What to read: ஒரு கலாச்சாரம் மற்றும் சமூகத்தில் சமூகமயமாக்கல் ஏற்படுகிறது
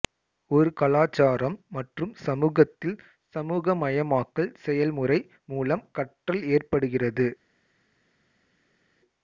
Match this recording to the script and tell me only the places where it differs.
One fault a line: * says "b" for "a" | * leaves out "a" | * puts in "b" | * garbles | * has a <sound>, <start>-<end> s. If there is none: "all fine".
* puts in "செயல்முறை மூலம் கற்றல்"